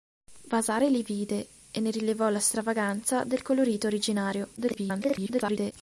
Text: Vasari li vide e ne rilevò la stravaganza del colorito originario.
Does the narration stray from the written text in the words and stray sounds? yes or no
yes